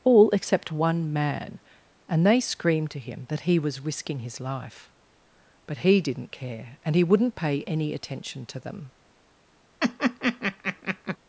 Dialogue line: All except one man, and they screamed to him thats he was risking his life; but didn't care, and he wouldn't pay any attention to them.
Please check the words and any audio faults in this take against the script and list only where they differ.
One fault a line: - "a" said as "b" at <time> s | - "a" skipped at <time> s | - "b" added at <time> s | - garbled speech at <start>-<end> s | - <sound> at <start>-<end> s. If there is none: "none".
- "thats" said as "that" at 3.3 s
- "he" added at 5.8 s
- laugh at 9.8-11.2 s